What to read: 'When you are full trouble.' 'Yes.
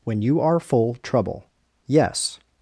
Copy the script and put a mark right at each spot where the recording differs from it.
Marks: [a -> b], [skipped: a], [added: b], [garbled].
'When you are full trouble.' 'Yes.